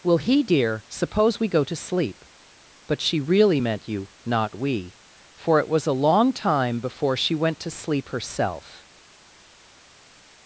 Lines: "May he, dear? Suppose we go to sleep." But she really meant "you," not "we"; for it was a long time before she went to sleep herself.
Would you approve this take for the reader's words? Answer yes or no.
no